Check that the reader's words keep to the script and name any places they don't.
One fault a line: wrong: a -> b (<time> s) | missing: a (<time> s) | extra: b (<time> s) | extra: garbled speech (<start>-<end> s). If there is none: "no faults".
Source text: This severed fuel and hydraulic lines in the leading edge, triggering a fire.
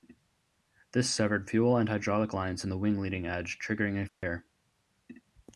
extra: wing (2.8 s)